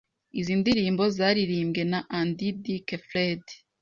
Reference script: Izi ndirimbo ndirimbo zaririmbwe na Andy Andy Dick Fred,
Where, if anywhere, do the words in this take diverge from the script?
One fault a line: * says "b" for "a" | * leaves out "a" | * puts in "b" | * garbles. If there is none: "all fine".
* leaves out "ndirimbo"
* leaves out "Andy"